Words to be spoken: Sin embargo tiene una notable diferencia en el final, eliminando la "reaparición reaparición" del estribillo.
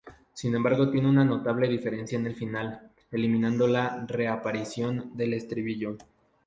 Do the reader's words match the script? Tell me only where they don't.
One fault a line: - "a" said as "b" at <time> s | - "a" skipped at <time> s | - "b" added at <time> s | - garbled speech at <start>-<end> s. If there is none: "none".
- "reaparición" skipped at 5.2 s